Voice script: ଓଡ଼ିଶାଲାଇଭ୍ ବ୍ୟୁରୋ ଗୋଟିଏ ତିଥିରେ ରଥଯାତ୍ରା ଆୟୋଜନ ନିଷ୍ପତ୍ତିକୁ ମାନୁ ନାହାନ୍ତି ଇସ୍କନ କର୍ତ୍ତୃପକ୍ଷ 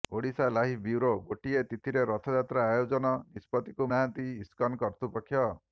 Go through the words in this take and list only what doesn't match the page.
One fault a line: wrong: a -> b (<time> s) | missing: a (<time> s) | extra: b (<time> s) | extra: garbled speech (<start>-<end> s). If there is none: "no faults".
missing: ମାନୁ (3.9 s)